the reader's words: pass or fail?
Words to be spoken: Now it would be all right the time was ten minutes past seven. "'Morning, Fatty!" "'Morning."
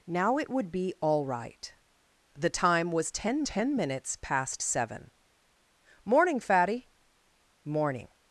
fail